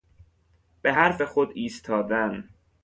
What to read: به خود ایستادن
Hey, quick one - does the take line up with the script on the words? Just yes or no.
no